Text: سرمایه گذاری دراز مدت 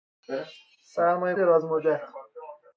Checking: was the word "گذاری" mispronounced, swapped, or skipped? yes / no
yes